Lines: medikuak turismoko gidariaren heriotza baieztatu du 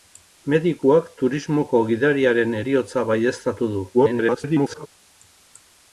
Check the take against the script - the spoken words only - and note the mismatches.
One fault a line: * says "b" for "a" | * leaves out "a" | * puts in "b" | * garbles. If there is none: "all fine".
* garbles